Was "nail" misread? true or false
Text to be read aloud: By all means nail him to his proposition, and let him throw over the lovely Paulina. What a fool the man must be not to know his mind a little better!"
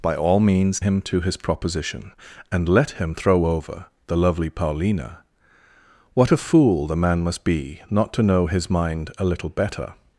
true